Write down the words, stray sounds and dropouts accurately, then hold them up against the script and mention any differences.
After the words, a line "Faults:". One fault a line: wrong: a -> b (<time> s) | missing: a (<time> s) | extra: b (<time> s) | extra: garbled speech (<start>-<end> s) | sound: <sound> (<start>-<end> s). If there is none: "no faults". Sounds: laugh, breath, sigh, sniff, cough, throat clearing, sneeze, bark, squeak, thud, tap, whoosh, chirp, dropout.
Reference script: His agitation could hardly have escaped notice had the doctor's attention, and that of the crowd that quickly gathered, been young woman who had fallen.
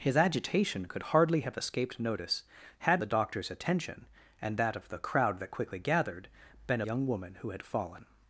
His agitation could hardly have escaped notice had the doctor's attention, and that of the crowd that quickly gathered, been young woman who had fallen.
Faults:
no faults